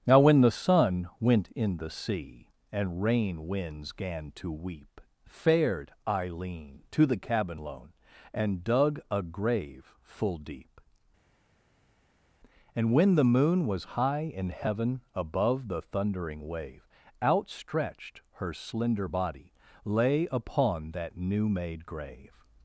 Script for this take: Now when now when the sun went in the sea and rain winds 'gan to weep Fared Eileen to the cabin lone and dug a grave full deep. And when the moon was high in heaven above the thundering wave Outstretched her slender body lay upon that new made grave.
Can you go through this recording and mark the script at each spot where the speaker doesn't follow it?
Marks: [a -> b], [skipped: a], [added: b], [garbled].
Now when [skipped: now when] the sun went in the sea and rain winds 'gan to weep Fared Eileen to the cabin lone and dug a grave full deep. And when the moon was high in heaven above the thundering wave Outstretched her slender body lay upon that new made grave.